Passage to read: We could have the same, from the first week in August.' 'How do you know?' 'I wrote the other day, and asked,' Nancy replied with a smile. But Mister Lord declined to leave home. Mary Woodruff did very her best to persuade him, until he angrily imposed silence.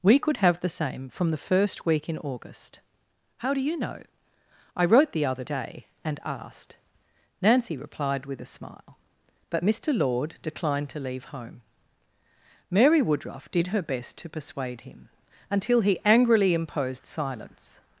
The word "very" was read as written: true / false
false